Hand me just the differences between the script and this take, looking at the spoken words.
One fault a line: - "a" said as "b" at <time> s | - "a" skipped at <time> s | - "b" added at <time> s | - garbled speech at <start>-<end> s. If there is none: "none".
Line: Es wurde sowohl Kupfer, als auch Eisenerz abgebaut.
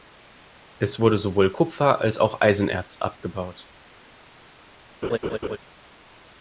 none